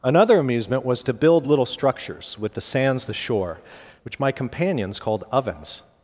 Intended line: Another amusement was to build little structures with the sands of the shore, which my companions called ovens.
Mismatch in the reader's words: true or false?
true